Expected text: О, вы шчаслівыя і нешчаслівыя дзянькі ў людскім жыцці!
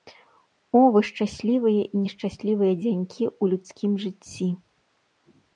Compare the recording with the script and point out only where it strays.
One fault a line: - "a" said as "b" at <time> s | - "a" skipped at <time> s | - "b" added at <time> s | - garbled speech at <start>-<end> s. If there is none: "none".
none